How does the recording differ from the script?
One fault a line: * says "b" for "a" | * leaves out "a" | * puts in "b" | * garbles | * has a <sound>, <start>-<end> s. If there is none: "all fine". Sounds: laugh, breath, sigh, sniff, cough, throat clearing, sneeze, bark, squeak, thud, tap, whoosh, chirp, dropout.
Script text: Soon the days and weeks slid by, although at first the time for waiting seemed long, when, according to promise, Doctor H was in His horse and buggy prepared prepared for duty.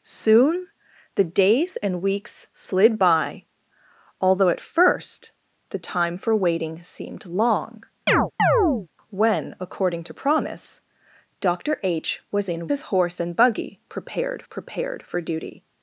* has a chirp, 8.1-8.9 s